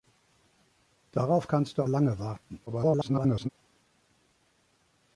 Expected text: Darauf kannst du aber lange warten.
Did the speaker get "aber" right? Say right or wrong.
wrong